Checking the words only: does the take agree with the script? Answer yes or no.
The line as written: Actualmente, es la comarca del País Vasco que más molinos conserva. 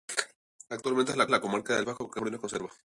no